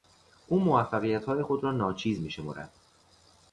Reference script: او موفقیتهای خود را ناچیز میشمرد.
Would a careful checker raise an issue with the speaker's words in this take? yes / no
no